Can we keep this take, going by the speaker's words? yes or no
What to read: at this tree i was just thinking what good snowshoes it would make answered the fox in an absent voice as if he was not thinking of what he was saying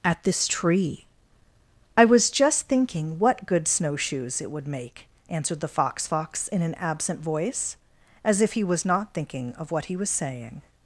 no